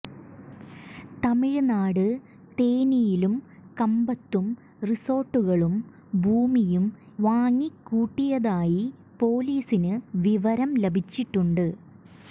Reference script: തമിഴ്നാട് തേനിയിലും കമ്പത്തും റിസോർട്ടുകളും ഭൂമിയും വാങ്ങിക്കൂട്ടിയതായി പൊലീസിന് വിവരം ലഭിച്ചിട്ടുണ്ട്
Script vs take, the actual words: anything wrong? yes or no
no